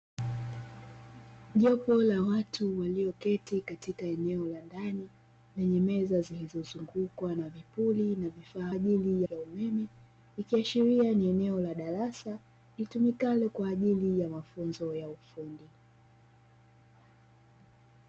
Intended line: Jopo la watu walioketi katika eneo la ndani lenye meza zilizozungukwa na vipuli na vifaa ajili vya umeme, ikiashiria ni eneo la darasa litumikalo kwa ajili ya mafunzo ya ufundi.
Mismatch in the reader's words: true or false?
false